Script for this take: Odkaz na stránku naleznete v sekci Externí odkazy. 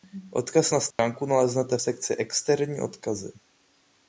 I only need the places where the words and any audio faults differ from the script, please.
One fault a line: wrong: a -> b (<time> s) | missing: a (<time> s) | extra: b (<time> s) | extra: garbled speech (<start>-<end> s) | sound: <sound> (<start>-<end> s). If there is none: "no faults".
sound: dropout (0.9-1.0 s)